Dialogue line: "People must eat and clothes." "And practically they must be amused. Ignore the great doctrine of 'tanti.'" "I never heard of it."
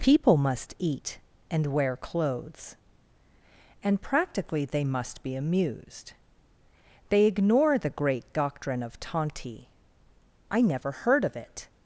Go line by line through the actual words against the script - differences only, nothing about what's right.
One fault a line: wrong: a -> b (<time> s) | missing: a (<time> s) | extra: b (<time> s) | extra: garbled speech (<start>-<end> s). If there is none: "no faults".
extra: wear (1.7 s)
extra: They (7.1 s)